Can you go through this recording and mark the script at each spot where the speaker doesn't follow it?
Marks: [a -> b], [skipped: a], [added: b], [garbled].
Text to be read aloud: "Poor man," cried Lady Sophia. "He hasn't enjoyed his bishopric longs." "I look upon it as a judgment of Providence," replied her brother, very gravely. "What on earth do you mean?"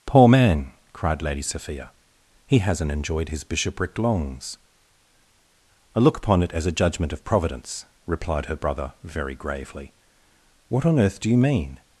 "Poor man," cried Lady Sophia. "He hasn't enjoyed his bishopric longs." "I look upon it as a judgment of Providence," replied her brother, very gravely. "What on earth do you mean?"